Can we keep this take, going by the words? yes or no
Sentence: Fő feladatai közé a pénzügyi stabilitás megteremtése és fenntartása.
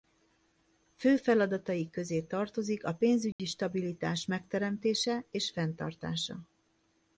no